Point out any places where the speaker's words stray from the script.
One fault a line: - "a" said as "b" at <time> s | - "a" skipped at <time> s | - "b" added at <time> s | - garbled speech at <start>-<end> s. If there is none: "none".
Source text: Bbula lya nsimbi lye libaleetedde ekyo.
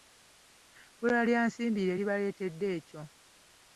none